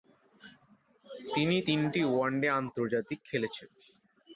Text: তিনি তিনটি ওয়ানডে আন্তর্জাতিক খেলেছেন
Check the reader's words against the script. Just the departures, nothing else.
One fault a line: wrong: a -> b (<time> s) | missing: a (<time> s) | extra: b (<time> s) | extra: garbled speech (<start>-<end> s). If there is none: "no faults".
no faults